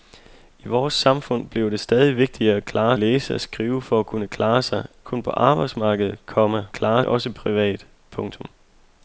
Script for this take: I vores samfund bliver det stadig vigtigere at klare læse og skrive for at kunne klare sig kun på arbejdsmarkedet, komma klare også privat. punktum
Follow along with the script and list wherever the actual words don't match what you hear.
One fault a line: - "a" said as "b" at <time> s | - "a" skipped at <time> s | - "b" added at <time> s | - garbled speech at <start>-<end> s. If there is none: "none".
none